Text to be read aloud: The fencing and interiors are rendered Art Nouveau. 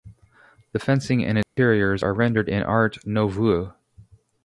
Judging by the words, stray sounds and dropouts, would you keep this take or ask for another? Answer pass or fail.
fail